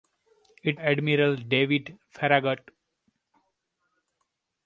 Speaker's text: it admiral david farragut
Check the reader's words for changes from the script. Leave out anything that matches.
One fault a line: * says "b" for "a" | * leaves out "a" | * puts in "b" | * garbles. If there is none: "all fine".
all fine